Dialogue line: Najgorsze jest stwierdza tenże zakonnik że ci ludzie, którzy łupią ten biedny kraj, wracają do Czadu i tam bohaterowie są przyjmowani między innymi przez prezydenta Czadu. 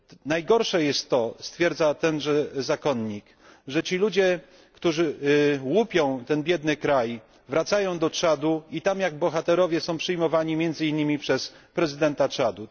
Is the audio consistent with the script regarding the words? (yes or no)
no